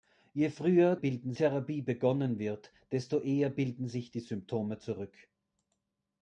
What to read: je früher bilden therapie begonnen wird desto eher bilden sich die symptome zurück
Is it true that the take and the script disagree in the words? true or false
false